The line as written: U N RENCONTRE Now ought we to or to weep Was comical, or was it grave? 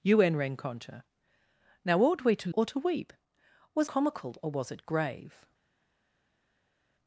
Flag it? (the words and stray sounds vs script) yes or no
no